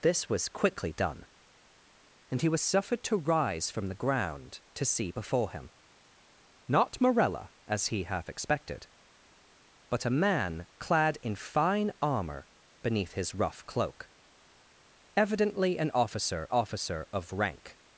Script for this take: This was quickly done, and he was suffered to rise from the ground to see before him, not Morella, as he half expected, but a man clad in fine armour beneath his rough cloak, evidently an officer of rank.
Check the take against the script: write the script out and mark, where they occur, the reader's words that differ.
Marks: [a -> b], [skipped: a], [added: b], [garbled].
This was quickly done, and he was suffered to rise from the ground to see before him, not Morella, as he half expected, but a man clad in fine armour beneath his rough cloak, evidently an officer [added: officer] of rank.